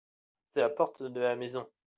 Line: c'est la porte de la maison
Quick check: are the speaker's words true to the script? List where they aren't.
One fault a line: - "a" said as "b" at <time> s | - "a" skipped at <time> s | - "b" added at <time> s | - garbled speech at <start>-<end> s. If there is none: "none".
none